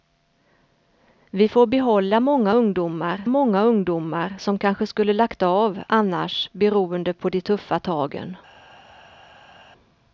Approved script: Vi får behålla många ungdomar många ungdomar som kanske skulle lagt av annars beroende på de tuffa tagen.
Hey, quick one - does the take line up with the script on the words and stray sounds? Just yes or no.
yes